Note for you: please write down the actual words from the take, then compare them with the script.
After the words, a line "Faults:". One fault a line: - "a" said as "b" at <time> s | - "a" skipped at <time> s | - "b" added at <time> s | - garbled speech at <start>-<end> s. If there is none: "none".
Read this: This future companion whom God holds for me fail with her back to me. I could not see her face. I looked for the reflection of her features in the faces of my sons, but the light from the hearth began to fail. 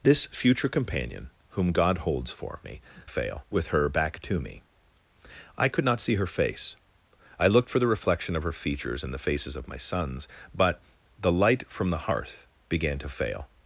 This future companion whom God holds for me fail with her back to me. I could not see her face. I looked for the reflection of her features in the faces of my sons, but the light from the hearth began to fail.
Faults:
none